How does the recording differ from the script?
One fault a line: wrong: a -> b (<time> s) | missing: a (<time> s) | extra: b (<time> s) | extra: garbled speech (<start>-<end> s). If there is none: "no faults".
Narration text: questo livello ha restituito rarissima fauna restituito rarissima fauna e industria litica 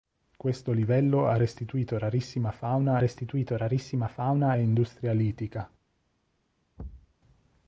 no faults